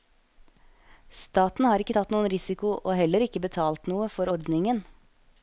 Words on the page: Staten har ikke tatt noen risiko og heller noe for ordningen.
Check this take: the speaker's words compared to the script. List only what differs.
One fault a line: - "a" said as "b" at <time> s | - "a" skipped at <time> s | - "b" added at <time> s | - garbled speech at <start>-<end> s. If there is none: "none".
- "ikke betalt" added at 3.3 s